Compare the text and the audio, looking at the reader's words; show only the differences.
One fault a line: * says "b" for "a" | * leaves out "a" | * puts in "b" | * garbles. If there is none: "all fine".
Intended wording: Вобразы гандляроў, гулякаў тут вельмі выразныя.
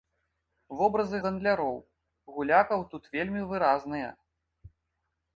all fine